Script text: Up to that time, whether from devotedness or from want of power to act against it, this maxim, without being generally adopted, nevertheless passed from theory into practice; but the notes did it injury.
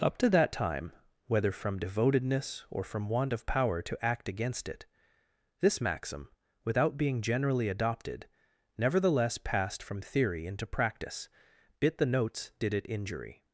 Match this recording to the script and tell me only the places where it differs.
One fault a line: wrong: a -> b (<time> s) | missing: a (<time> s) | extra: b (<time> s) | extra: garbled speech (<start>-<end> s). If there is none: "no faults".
wrong: but -> bit (11.8 s)